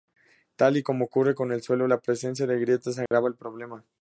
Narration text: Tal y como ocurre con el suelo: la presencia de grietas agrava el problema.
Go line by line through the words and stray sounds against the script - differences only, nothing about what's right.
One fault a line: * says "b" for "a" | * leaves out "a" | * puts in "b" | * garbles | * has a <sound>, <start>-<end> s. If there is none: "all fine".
* has a dropout, 3.1-3.1 s